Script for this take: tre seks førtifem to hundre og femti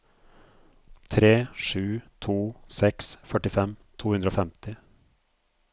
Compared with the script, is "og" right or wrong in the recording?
right